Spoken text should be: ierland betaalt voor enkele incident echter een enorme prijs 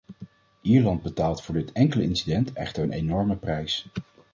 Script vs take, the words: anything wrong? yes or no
yes